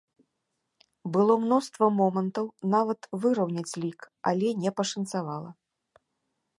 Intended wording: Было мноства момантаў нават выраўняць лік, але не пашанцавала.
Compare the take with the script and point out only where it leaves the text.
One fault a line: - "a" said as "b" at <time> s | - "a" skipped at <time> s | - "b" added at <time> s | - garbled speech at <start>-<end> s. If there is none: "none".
none